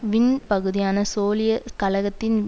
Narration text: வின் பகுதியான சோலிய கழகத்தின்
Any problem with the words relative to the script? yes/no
no